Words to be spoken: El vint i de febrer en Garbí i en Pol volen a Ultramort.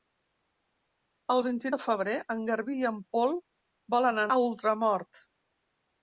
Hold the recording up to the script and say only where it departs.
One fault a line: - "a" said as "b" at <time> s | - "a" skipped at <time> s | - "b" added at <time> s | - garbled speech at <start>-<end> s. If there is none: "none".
none